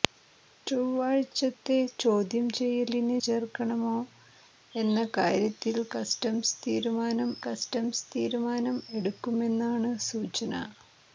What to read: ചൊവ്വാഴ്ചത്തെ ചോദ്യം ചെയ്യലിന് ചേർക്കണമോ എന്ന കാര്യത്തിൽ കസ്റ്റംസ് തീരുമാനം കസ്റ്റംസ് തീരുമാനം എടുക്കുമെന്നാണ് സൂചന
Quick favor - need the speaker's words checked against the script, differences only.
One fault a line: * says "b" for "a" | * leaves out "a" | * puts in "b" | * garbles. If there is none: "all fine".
all fine